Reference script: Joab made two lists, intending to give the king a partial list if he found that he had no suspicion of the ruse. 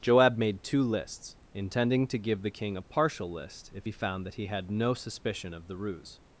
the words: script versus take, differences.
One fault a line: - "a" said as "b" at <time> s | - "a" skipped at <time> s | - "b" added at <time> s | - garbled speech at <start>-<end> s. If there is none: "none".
none